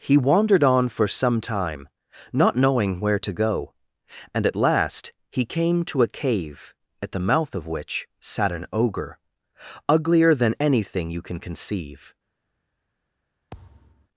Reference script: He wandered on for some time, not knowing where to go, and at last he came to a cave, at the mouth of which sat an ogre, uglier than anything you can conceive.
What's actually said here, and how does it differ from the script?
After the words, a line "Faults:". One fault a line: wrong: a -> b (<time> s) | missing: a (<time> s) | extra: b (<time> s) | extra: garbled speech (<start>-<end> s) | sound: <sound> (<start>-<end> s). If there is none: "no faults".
He wandered on for some time, not knowing where to go, and at last he came to a cave, at the mouth of which sat an ogre, uglier than anything you can conceive.
Faults:
sound: thud (13.5-14.1 s)